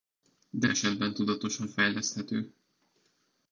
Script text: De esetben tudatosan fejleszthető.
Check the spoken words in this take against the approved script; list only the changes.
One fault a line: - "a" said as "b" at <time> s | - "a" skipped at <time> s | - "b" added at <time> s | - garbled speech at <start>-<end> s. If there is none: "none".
none